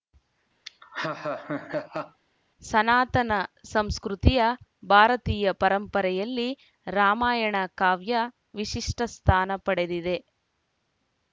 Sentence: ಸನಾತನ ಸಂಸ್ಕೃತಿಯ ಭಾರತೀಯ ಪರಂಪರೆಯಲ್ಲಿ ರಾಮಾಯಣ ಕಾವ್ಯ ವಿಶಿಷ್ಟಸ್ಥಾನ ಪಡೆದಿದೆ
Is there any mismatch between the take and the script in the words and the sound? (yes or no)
yes